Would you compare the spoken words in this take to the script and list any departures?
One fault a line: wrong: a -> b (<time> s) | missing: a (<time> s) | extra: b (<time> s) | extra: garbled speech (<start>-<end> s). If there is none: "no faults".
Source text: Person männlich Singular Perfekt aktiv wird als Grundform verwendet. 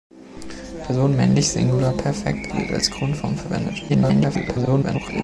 missing: aktiv (2.5 s)
extra: garbled speech (3.9-5.2 s)